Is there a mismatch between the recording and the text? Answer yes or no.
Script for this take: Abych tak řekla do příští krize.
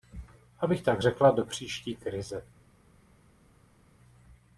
no